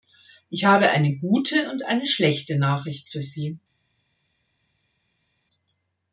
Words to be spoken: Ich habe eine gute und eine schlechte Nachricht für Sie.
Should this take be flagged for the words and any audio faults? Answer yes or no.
no